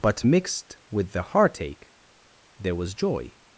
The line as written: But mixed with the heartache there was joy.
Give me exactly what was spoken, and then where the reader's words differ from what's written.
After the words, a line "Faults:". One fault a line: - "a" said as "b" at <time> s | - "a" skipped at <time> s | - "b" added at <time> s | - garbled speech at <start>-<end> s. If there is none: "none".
But mixed with the heartache there was joy.
Faults:
none